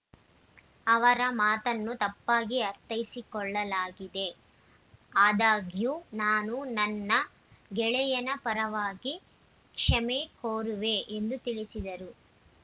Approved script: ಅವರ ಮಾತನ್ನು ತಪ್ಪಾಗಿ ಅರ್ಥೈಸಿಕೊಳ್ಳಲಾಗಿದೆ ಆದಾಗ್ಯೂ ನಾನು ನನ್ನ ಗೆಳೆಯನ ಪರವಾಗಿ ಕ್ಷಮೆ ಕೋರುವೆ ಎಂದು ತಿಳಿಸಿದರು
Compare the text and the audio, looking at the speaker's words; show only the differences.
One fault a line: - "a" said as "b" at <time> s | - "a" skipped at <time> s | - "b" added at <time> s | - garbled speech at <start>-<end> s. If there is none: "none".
none